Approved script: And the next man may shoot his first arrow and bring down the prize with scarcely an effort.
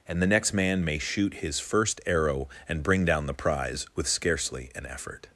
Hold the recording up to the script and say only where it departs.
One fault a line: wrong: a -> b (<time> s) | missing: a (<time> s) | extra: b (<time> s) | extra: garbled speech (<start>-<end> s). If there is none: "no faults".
no faults